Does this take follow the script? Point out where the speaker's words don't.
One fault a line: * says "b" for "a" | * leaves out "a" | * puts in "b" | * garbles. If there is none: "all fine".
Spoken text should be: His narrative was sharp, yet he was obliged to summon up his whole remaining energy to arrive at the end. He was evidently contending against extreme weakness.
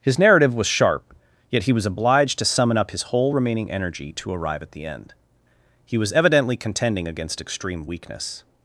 all fine